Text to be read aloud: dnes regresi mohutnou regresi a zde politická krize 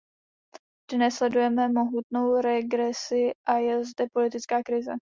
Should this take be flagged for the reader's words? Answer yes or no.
yes